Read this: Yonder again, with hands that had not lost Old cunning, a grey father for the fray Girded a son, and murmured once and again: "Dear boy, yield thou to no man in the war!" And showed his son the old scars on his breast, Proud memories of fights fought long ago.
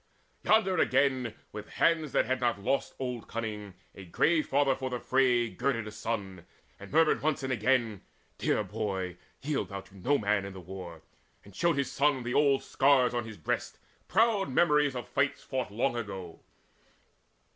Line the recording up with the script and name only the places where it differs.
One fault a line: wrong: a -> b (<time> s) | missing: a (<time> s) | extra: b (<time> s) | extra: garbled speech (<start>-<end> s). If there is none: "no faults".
no faults